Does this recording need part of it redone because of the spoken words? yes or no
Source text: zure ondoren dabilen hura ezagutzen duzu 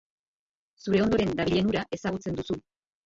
no